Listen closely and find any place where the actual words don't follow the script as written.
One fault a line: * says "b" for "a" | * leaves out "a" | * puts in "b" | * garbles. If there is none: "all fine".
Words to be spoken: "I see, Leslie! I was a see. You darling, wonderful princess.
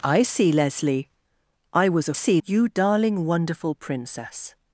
all fine